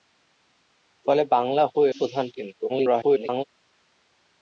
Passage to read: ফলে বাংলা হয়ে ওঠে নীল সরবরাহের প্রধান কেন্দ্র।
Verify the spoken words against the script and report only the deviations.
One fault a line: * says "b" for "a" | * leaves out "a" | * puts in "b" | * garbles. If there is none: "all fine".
* leaves out "ওঠে নীল সরবরাহের"
* garbles